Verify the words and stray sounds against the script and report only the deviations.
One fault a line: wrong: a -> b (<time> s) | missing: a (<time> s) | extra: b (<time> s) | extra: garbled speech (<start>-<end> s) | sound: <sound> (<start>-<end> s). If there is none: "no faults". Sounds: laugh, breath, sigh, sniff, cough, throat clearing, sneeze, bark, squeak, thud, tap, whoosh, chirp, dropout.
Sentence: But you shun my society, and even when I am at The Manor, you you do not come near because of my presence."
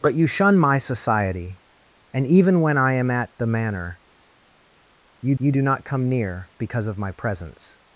no faults